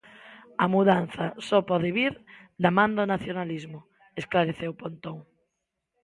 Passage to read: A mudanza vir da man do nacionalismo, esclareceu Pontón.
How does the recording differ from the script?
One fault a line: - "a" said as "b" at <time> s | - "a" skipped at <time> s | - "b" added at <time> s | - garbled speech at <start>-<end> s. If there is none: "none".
- "só pode" added at 1.5 s